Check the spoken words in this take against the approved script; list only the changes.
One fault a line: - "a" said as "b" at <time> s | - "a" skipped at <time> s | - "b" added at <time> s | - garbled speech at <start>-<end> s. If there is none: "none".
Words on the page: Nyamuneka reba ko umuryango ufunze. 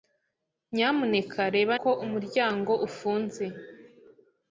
none